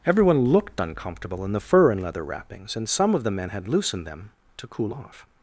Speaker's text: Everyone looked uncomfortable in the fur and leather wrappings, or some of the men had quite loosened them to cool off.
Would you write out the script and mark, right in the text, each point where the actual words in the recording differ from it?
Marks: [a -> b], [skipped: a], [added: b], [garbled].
Everyone looked uncomfortable in the fur and leather wrappings, [or -> and] some of the men had [skipped: quite] loosened them to cool off.